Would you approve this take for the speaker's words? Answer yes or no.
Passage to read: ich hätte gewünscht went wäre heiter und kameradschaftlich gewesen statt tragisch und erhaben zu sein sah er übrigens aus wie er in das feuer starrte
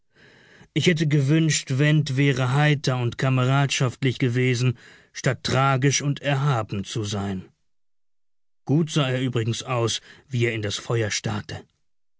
no